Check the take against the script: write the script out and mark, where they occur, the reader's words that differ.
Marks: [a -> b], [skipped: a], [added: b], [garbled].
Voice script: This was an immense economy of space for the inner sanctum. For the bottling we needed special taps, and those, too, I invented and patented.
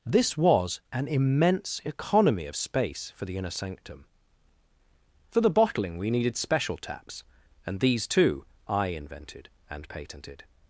This was an immense economy of space for the inner sanctum. For the bottling we needed special taps, and [those, -> these] too, I invented and patented.